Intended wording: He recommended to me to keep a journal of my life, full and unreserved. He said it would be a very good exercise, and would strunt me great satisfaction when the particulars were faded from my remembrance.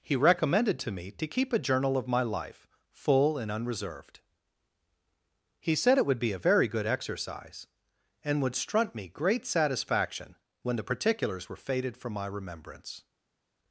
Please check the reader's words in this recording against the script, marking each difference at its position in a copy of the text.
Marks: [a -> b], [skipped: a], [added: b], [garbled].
He recommended to me to keep a journal of my life, full and unreserved. He said it would be a very good exercise, and would strunt me great satisfaction when the particulars were faded from my remembrance.